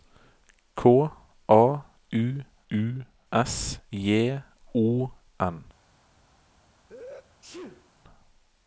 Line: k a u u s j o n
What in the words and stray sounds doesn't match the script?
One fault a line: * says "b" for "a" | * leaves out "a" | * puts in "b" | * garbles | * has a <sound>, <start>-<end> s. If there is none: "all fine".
* has a sneeze, 6.9-7.9 s